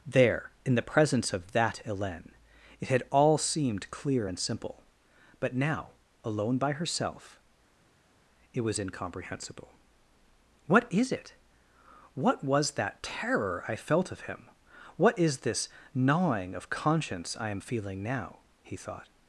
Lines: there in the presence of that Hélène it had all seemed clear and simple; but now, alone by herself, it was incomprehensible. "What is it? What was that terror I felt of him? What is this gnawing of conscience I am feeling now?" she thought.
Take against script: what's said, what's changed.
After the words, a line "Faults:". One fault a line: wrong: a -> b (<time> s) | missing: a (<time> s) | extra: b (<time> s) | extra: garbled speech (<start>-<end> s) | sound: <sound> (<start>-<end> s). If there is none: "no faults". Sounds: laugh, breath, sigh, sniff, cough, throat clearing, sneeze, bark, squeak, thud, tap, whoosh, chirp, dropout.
there in the presence of that Hélène it had all seemed clear and simple; but now, alone by herself, it was incomprehensible. "What is it? What was that terror I felt of him? What is this gnawing of conscience I am feeling now?" he thought.
Faults:
wrong: she -> he (18.6 s)